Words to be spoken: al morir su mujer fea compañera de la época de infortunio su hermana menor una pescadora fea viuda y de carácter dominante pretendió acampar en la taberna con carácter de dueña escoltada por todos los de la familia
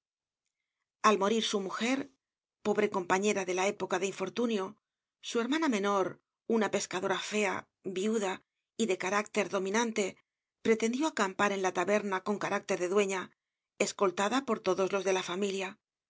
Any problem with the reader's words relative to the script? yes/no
yes